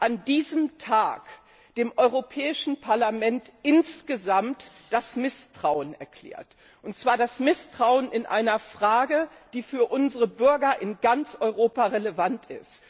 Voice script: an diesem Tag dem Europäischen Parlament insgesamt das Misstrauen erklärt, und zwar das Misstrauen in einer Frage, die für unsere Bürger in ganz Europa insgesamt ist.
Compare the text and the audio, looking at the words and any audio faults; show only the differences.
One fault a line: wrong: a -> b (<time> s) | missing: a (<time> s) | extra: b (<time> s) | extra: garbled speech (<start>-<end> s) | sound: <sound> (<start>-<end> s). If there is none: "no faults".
wrong: insgesamt -> relevant (11.8 s)